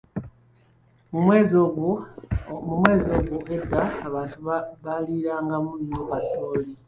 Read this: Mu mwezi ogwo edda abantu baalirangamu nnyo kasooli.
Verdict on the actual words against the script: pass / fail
pass